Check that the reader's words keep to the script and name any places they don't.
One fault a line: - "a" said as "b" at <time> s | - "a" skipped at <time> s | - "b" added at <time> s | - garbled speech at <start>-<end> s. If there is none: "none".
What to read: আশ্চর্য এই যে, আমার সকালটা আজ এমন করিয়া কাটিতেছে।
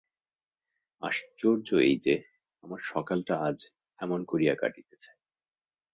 none